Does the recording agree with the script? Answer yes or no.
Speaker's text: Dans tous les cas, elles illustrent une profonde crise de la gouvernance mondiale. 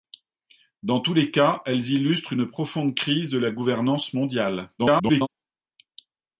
no